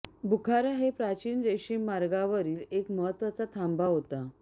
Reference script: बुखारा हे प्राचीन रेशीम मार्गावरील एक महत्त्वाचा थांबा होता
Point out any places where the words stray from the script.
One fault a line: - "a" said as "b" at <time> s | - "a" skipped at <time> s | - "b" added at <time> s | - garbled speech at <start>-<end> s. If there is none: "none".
none